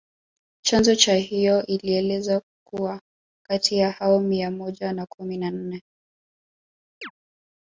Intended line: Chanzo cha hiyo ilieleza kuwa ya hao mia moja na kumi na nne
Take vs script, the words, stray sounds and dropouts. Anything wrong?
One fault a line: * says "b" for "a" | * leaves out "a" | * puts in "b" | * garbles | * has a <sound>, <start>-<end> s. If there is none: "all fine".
* puts in "kati"
* has a chirp, 7.0-7.1 s